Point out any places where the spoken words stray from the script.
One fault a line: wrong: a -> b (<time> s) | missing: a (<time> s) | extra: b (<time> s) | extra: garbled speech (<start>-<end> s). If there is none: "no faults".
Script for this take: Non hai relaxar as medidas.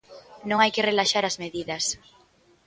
extra: que (0.7 s)